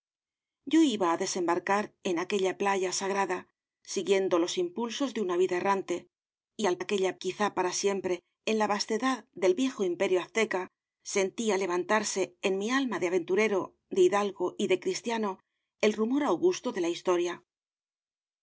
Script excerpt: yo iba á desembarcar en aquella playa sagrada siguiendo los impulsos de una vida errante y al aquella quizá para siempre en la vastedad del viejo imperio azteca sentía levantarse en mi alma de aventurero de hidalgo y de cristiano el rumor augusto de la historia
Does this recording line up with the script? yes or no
yes